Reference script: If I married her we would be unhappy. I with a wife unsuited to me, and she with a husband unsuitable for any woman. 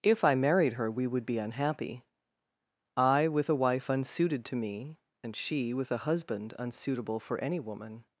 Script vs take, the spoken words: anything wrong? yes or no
no